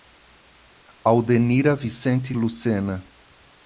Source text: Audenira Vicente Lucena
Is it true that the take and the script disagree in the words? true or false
false